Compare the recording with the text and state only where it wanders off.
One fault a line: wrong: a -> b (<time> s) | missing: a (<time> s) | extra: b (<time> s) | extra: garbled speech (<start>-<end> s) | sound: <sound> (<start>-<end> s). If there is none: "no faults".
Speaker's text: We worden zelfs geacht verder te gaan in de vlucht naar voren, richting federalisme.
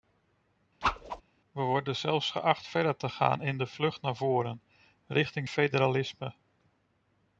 sound: whoosh (0.8-1.2 s)